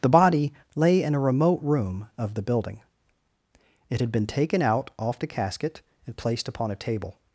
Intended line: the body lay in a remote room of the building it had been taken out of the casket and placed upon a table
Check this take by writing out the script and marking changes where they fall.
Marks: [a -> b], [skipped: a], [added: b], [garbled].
the body lay in a remote room of the building it had been taken out [of -> off] the casket and placed upon a table